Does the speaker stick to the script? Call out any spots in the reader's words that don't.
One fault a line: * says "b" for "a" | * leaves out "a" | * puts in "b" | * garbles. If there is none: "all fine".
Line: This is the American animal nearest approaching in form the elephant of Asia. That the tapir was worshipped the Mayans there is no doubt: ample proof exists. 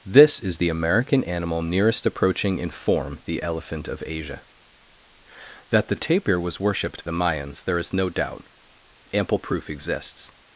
all fine